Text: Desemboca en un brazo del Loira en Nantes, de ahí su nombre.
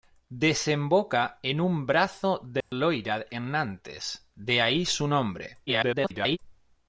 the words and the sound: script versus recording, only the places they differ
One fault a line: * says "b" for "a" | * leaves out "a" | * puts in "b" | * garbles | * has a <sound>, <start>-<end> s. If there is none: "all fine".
* has a dropout, 2.6-2.7 s
* garbles